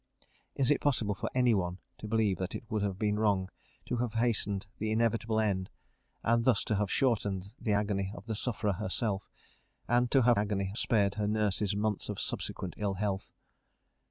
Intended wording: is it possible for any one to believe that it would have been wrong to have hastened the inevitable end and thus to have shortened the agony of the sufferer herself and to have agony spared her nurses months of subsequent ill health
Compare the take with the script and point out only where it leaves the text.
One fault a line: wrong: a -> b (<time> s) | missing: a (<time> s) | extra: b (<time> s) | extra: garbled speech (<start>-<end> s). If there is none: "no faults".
no faults